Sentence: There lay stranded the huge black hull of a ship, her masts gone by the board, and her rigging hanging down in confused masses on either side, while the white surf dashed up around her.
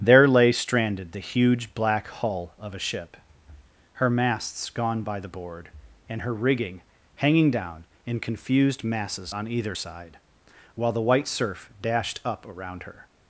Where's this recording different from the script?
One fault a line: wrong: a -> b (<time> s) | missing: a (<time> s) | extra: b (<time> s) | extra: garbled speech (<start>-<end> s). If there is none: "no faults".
no faults